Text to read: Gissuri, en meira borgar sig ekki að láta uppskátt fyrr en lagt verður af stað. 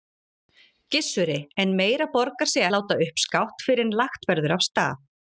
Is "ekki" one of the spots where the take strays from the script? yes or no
yes